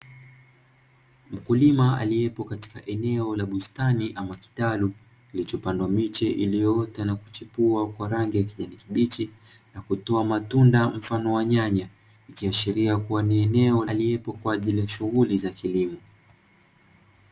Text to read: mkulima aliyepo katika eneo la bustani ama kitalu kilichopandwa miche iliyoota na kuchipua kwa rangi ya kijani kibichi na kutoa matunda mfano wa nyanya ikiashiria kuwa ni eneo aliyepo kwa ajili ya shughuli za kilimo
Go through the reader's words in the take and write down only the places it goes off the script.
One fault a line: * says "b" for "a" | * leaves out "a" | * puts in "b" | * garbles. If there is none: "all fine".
all fine